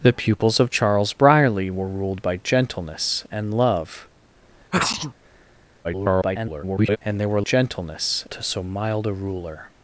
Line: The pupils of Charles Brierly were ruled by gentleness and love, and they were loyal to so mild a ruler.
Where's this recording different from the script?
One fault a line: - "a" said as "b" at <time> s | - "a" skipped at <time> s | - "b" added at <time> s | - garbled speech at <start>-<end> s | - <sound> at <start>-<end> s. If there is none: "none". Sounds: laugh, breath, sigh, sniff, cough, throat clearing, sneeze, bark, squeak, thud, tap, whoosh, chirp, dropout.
- sneeze at 4.7-5.1 s
- garbled speech at 5.8-7.0 s
- "loyal" said as "gentleness" at 7.4 s